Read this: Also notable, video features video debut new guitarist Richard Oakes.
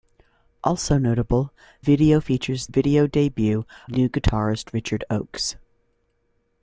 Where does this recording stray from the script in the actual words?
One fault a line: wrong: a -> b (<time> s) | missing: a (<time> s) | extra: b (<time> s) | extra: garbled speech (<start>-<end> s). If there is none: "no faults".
no faults